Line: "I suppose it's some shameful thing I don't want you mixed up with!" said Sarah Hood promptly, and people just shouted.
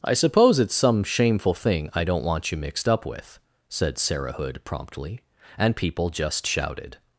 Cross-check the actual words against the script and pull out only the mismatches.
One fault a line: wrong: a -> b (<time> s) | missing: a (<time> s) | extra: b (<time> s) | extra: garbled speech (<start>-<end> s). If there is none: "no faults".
no faults